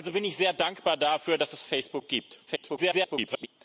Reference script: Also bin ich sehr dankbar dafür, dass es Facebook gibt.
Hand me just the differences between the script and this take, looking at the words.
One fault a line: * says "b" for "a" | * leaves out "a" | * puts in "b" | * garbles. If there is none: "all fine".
* garbles